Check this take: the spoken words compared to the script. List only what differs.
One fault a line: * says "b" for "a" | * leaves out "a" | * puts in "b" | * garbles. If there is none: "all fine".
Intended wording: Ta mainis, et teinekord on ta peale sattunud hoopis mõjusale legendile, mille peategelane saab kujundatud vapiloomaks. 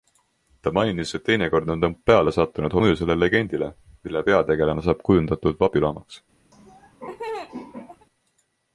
* leaves out "hoopis"